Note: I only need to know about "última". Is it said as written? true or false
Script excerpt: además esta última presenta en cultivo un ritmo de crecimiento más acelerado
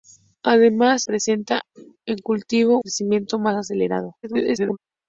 false